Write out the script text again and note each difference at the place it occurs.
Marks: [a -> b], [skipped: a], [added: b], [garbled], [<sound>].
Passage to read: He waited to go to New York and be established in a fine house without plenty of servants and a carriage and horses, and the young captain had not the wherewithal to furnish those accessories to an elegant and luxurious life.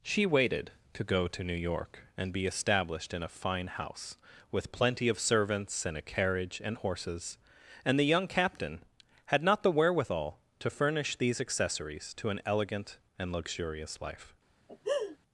[He -> She] waited to go to New York and be established in a fine house [without -> with] plenty of servants and a carriage and horses, and the young captain had not the wherewithal to furnish [those -> these] accessories to an elegant and luxurious life. [laugh]